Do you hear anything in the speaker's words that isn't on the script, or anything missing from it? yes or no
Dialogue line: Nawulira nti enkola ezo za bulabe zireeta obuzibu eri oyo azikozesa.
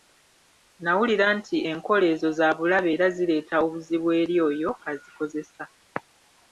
yes